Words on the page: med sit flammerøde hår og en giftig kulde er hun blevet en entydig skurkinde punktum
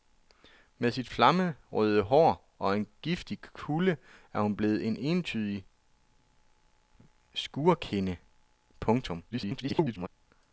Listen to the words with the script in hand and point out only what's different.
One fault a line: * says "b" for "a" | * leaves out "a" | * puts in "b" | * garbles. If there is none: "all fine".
* garbles